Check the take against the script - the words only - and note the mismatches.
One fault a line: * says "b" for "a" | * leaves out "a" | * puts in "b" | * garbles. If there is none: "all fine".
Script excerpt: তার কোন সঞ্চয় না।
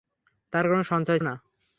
all fine